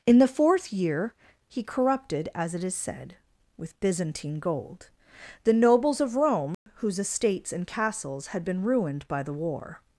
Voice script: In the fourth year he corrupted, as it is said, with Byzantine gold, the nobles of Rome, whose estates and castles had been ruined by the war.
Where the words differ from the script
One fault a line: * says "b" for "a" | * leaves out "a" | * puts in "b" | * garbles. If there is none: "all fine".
all fine